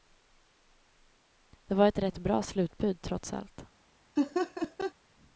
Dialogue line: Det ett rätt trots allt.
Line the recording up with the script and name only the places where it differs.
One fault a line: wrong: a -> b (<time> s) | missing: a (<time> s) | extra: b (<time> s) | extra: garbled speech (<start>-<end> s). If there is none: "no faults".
extra: var (1.8 s)
extra: bra slutbud (2.2 s)